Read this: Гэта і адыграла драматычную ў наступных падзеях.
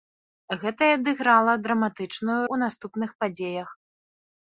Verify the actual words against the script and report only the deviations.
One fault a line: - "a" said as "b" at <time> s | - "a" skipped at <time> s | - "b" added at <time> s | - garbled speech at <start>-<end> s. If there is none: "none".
none